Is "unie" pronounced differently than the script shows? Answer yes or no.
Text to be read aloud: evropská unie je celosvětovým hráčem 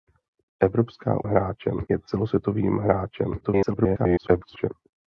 yes